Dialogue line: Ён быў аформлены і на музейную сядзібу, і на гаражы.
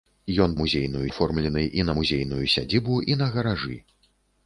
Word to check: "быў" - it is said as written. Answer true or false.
false